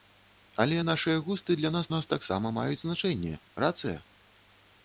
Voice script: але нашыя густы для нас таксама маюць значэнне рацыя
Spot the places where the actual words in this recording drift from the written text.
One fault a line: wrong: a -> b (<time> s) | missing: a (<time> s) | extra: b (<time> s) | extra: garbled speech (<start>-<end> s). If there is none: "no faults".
extra: нас (1.9 s)